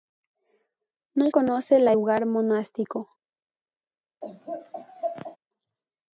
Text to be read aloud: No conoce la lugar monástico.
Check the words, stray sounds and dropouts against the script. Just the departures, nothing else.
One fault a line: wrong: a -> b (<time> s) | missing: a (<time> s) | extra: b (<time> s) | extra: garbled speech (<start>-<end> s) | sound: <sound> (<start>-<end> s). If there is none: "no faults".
sound: laugh (4.2-5.4 s)